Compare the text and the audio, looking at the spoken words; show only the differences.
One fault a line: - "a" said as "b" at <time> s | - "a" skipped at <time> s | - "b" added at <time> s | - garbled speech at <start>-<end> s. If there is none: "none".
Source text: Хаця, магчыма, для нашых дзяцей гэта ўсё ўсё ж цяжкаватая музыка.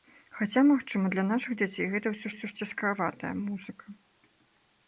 none